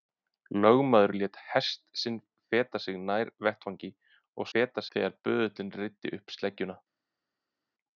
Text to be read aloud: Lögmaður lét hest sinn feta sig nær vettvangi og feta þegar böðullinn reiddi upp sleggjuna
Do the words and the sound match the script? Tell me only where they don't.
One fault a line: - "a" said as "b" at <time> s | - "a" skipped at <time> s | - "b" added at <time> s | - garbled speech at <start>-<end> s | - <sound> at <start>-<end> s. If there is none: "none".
none